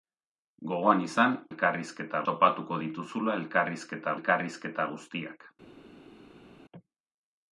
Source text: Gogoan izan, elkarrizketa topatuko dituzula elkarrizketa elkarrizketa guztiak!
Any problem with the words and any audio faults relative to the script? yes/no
no